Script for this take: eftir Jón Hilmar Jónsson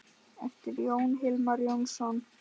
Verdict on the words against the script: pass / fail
pass